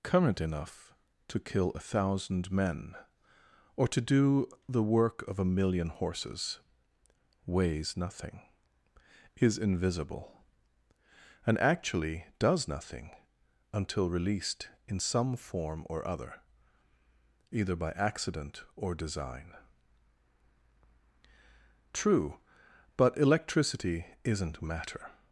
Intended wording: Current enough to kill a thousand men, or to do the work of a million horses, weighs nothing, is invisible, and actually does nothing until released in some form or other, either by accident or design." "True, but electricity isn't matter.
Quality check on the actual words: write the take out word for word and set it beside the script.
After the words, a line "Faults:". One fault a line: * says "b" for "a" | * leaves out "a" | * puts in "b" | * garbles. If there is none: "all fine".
Current enough to kill a thousand men, or to do the work of a million horses, weighs nothing, is invisible, and actually does nothing until released in some form or other, either by accident or design." "True, but electricity isn't matter.
Faults:
all fine